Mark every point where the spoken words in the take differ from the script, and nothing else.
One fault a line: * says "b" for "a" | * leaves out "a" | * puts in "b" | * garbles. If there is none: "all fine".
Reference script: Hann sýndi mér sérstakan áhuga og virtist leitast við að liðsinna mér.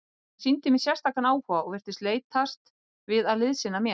all fine